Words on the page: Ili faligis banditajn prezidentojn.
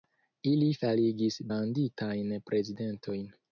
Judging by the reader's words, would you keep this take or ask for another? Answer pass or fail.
pass